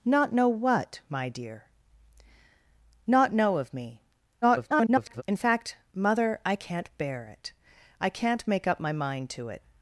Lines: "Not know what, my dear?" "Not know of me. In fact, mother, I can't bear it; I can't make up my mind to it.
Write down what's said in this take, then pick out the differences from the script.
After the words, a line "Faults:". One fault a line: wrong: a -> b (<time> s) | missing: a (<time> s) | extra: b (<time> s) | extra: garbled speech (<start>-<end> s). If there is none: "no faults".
"Not know what, my dear?" "Not know of me. [garbled] In fact, mother, I can't bear it; I can't make up my mind to it.
Faults:
extra: garbled speech (4.4-5.2 s)